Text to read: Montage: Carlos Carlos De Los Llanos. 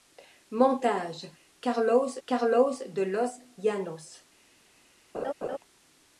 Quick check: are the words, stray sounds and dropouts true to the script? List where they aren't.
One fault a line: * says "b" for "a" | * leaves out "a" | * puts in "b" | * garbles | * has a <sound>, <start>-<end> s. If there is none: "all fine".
* has a laugh, 5.1-5.6 s